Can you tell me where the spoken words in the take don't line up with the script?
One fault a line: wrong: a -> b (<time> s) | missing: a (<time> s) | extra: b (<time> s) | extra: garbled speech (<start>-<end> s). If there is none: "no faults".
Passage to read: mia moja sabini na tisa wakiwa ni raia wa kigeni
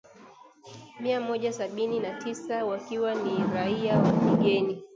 no faults